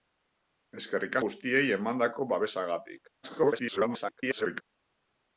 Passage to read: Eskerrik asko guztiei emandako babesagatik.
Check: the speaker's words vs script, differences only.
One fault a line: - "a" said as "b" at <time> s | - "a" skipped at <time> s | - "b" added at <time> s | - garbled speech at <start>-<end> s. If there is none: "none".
- "asko" skipped at 1.2 s
- garbled speech at 3.2-4.6 s